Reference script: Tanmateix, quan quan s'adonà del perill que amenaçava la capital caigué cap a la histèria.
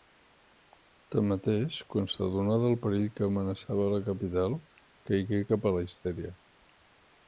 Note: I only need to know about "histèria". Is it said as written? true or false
true